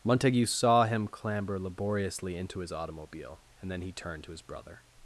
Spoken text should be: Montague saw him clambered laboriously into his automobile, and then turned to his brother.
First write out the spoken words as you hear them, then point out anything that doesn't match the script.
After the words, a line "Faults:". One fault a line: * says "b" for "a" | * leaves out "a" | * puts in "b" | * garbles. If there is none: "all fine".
Montague saw him clamber laboriously into his automobile, and then he turned to his brother.
Faults:
* says "clamber" for "clambered"
* puts in "he"